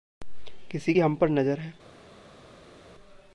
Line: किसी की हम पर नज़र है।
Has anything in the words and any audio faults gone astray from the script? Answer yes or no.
no